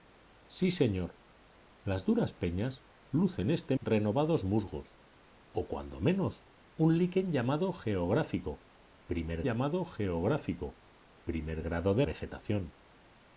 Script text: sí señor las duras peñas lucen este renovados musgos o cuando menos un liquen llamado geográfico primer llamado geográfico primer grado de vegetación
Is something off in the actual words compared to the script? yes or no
no